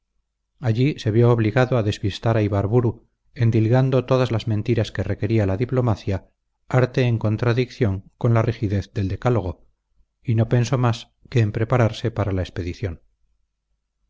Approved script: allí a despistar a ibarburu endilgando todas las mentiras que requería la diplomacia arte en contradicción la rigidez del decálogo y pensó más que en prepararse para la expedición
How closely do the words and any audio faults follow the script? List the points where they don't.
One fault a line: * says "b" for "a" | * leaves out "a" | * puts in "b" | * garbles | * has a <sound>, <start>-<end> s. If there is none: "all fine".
* puts in "se vio obligado"
* puts in "con"
* puts in "no"